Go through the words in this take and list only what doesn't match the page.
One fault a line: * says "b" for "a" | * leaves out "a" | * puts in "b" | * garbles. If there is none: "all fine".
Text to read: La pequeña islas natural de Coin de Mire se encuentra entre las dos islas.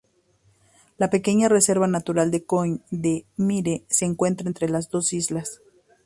* says "reserva" for "islas"